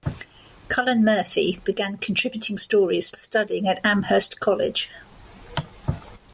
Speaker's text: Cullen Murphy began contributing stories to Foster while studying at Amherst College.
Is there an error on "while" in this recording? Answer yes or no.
yes